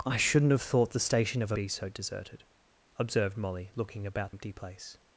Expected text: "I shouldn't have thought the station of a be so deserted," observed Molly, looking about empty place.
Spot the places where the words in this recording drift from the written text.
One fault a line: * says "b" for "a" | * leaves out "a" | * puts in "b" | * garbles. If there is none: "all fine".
all fine